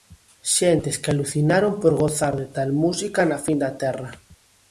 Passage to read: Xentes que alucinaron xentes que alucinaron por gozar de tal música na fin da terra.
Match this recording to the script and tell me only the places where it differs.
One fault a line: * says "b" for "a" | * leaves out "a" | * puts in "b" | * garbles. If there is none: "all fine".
* leaves out "xentes que alucinaron"